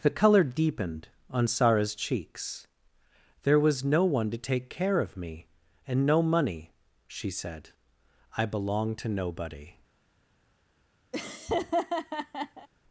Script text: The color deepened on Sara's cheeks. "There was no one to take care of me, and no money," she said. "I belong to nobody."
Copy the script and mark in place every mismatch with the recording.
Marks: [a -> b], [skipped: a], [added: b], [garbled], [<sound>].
The color deepened on Sara's cheeks. "There was no one to take care of me, and no money," she said. "I belong to nobody." [laugh]